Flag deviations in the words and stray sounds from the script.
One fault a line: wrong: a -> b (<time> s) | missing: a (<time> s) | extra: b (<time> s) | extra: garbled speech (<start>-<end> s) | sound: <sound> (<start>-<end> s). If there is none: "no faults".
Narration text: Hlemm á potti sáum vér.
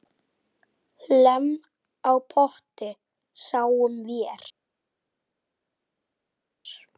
no faults